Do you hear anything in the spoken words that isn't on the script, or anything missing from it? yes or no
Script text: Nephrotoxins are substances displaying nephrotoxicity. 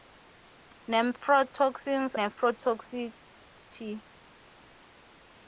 yes